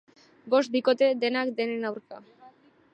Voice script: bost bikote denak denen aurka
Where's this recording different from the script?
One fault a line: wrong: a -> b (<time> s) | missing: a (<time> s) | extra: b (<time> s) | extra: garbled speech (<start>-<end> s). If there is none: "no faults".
no faults